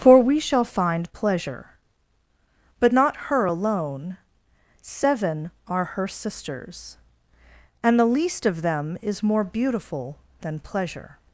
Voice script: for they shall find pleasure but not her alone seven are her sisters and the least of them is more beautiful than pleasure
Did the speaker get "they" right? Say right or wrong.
wrong